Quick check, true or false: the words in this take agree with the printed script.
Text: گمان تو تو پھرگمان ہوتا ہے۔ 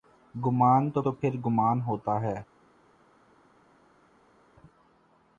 true